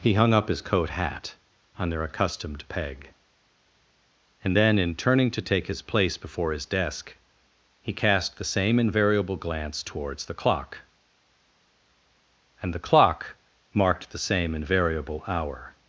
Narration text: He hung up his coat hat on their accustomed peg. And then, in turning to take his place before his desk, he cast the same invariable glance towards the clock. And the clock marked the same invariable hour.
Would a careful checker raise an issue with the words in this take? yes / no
no